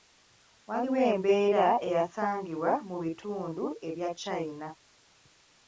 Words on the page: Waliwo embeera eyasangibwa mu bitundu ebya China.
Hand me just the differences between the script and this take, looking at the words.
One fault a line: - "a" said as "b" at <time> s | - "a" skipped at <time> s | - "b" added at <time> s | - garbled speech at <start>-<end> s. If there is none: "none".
none